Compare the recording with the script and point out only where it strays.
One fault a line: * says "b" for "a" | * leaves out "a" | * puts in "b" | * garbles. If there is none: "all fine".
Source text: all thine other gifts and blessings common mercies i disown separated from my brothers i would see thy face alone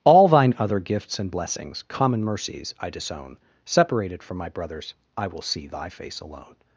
* says "will" for "would"